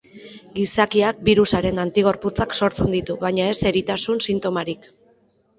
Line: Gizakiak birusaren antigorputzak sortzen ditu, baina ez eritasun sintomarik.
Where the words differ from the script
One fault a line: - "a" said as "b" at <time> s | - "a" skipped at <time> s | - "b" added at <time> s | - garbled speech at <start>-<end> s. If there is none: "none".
none